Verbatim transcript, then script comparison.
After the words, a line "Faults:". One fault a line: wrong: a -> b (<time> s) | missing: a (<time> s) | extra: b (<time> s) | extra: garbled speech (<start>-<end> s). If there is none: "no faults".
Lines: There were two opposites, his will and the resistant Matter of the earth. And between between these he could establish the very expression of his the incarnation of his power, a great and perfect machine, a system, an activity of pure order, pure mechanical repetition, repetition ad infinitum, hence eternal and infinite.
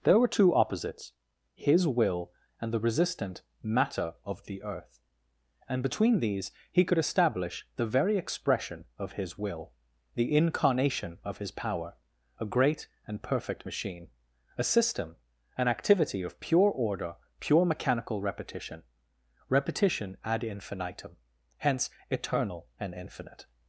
There were two opposites, his will and the resistant Matter of the earth. And between these he could establish the very expression of his will, the incarnation of his power, a great and perfect machine, a system, an activity of pure order, pure mechanical repetition, repetition ad infinitum, hence eternal and infinite.
Faults:
missing: between (6.2 s)
extra: will (9.4 s)